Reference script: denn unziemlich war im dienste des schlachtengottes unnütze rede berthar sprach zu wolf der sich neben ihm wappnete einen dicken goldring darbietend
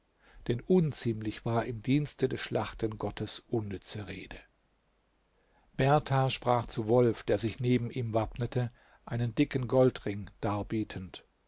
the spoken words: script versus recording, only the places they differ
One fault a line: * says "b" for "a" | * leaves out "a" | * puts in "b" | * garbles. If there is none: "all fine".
all fine